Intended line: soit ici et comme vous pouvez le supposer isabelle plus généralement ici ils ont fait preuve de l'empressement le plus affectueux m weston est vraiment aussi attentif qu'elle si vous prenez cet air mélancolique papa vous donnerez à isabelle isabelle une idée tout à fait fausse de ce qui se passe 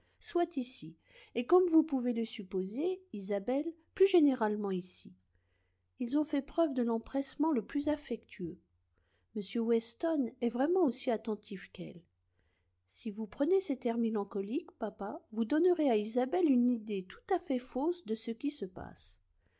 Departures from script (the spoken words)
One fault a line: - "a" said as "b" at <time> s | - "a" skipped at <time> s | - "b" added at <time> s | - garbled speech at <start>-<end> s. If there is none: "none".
- "isabelle" skipped at 16.5 s